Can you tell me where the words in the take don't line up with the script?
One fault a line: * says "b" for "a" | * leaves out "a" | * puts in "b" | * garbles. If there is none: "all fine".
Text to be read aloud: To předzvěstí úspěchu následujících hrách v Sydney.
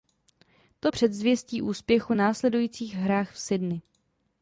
all fine